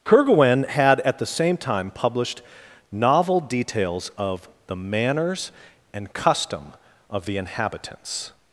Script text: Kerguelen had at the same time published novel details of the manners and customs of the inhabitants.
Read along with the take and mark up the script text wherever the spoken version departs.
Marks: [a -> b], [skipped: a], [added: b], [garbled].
Kerguelen had at the same time published novel details of the manners and [customs -> custom] of the inhabitants.